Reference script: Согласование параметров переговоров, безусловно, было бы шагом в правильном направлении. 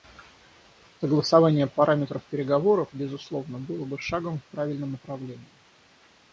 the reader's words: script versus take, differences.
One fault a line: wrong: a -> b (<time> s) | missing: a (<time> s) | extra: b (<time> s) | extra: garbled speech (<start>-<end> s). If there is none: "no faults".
no faults